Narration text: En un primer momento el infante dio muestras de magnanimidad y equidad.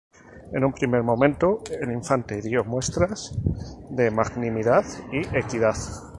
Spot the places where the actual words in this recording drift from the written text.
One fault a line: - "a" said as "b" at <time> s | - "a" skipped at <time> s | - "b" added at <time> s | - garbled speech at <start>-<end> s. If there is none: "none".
none